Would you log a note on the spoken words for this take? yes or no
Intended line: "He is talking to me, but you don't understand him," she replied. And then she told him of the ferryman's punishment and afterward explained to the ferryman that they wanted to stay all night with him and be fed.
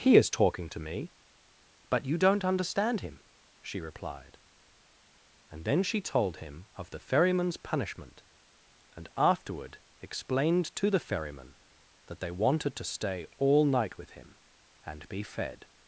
no